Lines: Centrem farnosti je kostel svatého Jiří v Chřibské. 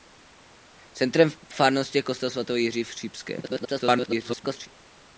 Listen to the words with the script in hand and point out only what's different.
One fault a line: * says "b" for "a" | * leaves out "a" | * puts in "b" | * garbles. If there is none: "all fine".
* garbles